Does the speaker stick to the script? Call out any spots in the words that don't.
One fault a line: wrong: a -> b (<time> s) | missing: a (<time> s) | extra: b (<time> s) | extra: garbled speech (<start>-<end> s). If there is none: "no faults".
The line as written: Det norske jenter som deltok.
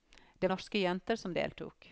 no faults